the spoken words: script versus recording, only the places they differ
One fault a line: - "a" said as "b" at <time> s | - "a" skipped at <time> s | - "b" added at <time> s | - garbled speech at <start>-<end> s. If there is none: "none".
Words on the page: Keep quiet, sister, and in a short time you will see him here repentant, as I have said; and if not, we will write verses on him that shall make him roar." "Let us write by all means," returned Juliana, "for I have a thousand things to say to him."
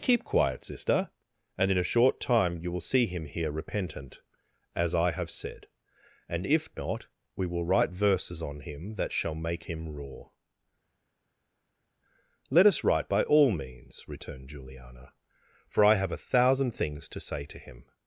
none